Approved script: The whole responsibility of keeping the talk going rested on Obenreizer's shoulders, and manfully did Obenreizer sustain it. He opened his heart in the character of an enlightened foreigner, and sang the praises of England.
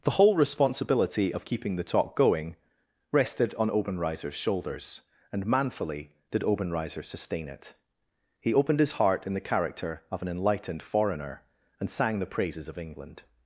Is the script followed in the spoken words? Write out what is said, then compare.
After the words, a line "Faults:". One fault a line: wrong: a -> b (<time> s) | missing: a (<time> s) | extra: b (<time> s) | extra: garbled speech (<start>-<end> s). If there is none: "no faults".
The whole responsibility of keeping the talk going rested on Obenreizer's shoulders, and manfully did Obenreizer sustain it. He opened his heart in the character of an enlightened foreigner, and sang the praises of England.
Faults:
no faults